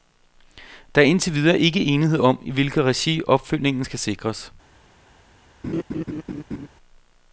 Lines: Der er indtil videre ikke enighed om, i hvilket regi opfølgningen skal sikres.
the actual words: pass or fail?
pass